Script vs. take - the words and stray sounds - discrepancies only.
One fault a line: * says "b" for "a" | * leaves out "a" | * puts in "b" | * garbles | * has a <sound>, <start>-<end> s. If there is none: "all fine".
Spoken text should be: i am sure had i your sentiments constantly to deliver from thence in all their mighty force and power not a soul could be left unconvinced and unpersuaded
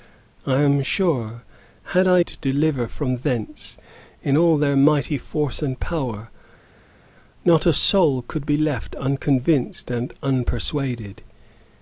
* leaves out "your sentiments constantly"